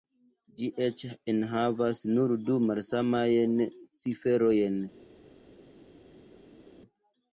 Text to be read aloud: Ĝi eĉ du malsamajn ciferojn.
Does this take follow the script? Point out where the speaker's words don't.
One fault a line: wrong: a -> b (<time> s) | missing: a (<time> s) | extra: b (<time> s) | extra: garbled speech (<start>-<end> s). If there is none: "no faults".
extra: enhavas nur (1.3 s)